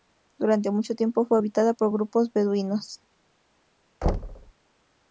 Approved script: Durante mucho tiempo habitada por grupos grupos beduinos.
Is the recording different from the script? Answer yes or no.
yes